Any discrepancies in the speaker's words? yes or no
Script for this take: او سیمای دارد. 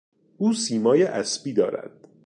yes